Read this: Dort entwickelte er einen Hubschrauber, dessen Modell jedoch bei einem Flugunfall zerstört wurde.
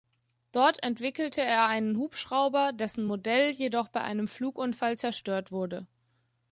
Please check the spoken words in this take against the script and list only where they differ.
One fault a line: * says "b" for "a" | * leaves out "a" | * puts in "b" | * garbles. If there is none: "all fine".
all fine